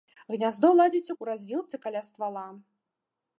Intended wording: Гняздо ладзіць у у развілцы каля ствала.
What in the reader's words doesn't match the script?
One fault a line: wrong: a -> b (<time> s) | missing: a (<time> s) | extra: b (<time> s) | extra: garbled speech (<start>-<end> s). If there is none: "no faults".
no faults